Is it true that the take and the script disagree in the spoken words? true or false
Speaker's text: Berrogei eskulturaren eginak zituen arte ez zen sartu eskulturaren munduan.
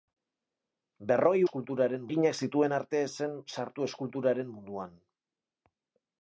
false